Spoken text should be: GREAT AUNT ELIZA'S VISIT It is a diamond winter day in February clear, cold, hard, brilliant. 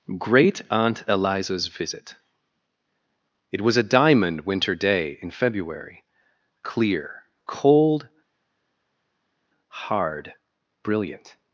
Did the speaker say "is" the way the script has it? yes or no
no